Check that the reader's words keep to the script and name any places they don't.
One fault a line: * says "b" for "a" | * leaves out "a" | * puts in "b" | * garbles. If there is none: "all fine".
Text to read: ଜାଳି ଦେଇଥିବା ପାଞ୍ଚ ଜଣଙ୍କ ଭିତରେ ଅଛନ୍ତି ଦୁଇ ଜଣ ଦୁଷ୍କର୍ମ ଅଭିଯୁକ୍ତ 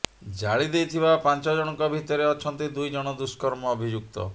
all fine